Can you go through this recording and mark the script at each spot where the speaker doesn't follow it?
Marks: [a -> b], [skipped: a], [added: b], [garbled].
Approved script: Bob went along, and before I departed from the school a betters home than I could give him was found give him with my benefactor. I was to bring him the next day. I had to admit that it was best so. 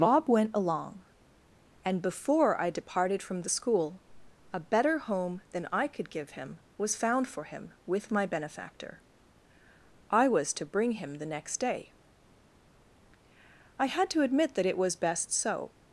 Bob went along, and before I departed from the school a [betters -> better] home than I could give him was found [give -> for] him with my benefactor. I was to bring him the next day. I had to admit that it was best so.